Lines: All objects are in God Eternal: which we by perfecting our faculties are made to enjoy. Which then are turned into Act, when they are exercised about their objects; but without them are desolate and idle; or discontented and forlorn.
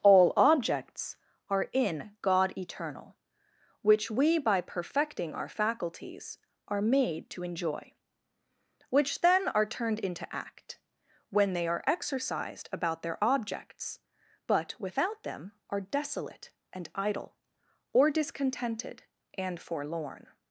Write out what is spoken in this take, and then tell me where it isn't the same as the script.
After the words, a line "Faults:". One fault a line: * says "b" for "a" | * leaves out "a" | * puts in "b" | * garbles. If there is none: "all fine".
All objects are in God Eternal: which we by perfecting our faculties are made to enjoy. Which then are turned into Act, when they are exercised about their objects; but without them are desolate and idle; or discontented and forlorn.
Faults:
all fine